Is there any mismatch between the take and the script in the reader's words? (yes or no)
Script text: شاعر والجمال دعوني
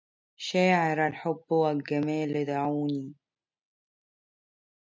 yes